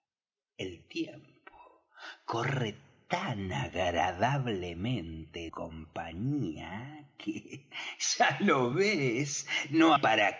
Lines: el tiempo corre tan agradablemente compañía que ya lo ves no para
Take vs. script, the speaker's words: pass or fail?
pass